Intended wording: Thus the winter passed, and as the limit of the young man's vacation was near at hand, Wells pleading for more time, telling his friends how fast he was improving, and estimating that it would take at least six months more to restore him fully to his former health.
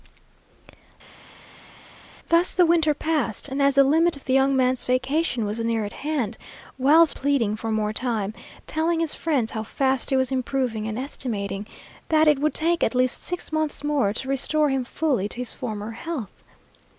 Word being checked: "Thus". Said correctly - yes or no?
yes